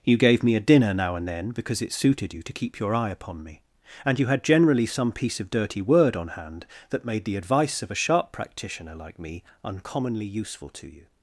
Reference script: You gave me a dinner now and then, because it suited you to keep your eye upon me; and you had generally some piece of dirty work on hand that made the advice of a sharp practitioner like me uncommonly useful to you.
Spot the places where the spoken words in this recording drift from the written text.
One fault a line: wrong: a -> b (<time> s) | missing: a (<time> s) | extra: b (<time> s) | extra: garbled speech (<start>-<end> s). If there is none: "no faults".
wrong: work -> word (5.8 s)